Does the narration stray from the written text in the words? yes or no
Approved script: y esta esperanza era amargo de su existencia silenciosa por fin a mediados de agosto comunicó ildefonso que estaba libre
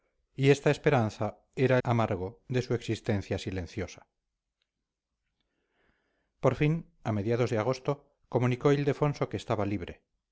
no